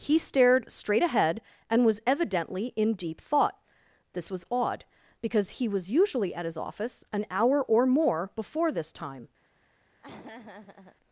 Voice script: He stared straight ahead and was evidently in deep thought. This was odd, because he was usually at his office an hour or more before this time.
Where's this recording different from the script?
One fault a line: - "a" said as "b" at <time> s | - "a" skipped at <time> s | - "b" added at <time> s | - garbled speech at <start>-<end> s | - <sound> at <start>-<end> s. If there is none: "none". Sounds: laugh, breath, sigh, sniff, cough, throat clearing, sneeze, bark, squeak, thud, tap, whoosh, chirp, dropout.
- laugh at 10.0-11.0 s